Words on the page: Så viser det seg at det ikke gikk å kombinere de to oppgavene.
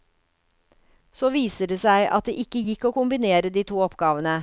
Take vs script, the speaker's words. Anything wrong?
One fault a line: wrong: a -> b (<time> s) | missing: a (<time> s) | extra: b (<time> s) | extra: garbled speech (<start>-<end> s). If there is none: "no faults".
no faults